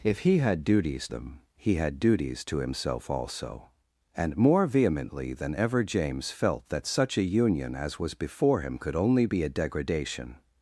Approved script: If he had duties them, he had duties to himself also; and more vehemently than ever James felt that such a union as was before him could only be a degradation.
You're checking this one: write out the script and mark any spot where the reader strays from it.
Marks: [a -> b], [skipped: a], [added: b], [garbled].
If he had duties them, he had duties to himself also; and more vehemently than ever James felt that such a union as was before him could only be a degradation.